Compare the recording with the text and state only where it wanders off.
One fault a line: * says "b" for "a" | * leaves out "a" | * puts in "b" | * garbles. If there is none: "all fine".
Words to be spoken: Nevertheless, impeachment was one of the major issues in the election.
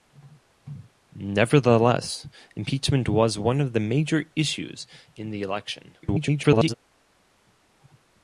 * garbles